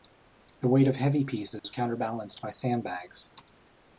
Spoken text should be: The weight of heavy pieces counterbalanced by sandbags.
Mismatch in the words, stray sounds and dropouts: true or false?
true